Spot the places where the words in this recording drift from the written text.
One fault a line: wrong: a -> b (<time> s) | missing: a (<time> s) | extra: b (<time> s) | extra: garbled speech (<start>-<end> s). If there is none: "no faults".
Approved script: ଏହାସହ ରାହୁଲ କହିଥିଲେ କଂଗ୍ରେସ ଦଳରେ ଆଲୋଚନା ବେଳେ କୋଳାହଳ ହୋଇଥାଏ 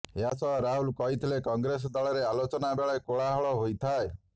no faults